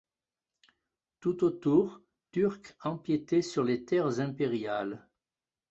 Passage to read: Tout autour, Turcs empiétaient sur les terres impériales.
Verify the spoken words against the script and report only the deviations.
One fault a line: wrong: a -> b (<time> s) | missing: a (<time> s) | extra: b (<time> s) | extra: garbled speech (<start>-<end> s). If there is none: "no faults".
no faults